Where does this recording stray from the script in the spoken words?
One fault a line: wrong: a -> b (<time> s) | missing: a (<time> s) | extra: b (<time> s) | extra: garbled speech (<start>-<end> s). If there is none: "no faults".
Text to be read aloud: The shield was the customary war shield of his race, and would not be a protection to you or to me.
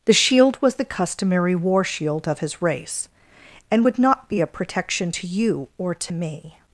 no faults